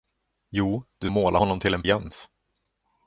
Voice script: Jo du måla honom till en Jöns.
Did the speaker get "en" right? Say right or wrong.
right